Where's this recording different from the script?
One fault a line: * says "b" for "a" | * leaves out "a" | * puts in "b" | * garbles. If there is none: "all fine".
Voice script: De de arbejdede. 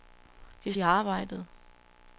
all fine